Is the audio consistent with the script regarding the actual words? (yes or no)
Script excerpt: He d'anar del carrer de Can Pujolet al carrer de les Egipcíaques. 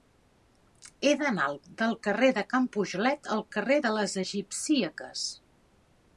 yes